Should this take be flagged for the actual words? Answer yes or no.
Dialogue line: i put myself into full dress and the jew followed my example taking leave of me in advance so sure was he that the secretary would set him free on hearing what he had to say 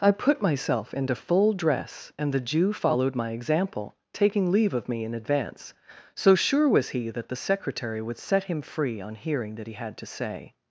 yes